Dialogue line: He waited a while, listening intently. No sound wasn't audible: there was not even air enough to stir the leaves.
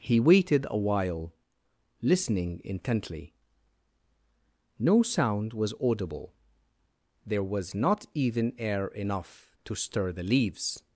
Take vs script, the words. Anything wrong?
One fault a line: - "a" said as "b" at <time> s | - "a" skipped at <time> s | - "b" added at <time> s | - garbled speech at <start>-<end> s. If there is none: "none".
- "wasn't" said as "was" at 5.5 s